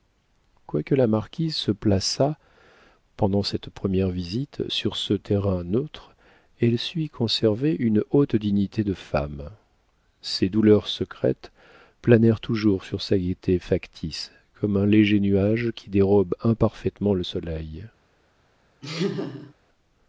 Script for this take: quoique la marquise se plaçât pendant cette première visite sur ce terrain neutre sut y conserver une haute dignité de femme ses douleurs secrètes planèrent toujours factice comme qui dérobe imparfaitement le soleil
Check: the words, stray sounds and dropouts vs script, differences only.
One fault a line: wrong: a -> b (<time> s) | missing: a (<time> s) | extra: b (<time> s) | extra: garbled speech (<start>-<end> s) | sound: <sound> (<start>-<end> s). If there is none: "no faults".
extra: elle (6.6 s)
extra: sur sa gaieté (12.8 s)
extra: un léger nuage (14.8 s)
sound: laugh (18.8-19.5 s)